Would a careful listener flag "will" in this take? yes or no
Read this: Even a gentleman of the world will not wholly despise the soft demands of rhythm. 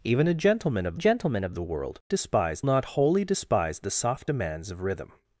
yes